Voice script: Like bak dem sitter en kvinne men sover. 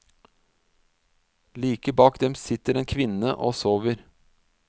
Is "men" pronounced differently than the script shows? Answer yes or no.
yes